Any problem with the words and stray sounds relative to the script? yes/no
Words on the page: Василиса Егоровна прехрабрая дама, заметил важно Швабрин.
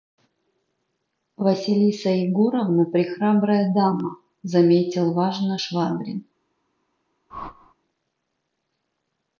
yes